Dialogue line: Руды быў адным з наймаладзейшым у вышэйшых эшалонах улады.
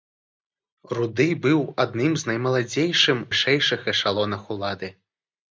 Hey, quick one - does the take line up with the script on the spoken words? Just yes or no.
no